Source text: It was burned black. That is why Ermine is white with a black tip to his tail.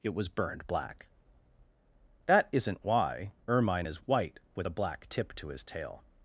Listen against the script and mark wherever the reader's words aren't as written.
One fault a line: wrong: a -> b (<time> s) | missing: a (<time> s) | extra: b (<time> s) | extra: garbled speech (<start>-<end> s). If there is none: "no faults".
wrong: is -> isn't (2.5 s)